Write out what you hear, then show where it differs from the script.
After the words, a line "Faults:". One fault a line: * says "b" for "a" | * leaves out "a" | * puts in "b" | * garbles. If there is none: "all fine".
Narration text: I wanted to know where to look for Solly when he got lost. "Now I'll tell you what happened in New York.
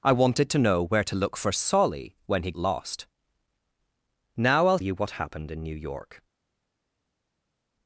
I wanted to know where to look for Solly when he lost. "Now I'll you what happened in New York.
Faults:
* leaves out "got"
* leaves out "tell"